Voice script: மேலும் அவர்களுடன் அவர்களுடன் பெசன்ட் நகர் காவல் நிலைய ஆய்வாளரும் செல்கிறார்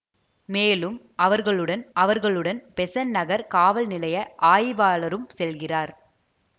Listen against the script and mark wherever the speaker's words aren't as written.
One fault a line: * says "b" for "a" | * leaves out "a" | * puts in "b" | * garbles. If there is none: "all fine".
all fine